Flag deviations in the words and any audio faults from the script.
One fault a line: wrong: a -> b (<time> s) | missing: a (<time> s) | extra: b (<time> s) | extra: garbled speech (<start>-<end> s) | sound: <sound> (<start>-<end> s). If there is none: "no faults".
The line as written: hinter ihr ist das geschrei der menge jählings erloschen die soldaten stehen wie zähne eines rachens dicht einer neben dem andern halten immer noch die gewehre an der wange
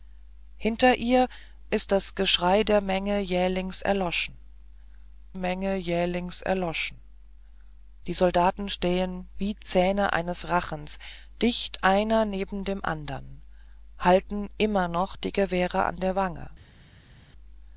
extra: menge jählings erloschen (5.4 s)